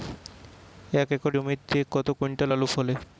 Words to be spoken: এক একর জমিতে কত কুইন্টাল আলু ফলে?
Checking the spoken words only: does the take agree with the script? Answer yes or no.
yes